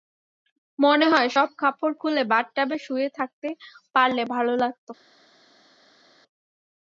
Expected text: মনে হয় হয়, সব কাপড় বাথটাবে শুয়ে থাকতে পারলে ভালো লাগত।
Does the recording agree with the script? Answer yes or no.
no